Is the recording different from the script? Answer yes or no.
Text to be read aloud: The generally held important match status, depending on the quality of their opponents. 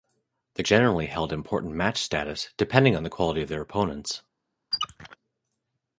no